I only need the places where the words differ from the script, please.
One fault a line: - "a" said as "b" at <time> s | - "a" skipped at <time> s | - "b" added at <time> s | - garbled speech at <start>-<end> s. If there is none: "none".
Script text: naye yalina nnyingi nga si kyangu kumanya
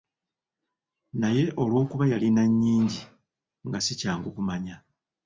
- "olwokuba" added at 1.6 s